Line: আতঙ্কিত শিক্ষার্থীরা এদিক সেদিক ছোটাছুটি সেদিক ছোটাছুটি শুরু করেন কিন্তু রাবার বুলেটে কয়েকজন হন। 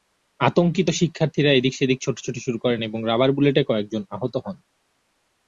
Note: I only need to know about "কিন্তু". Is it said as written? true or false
false